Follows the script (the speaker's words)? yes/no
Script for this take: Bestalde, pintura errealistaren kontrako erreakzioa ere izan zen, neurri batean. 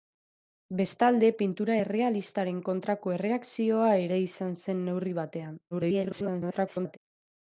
no